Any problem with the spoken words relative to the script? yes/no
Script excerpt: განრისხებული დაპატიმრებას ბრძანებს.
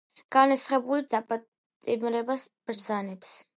no